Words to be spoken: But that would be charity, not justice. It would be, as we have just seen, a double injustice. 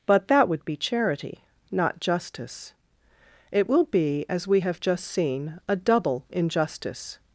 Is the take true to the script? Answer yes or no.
no